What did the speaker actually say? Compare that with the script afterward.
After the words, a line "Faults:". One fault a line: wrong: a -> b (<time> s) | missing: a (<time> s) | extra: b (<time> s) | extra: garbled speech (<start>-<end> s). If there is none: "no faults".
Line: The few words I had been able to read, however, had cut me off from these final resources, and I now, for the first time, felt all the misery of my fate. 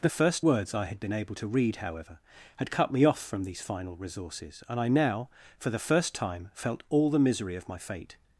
The first words I had been able to read, however, had cut me off from these final resources, and I now, for the first time, felt all the misery of my fate.
Faults:
wrong: few -> first (0.1 s)